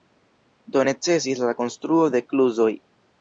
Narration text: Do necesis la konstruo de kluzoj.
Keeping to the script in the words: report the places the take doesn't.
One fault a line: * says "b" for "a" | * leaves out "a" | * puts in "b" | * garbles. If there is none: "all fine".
all fine